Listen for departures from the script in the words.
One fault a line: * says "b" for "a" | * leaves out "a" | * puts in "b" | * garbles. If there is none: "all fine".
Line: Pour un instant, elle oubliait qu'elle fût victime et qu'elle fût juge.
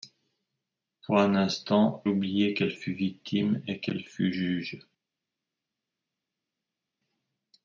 * leaves out "elle"